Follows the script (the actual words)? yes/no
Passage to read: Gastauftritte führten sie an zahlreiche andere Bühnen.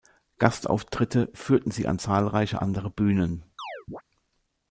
yes